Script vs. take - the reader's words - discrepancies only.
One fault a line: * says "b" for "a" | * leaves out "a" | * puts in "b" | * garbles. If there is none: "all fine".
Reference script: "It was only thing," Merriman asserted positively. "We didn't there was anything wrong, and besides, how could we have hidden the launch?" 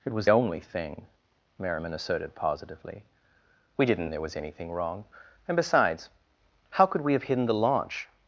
all fine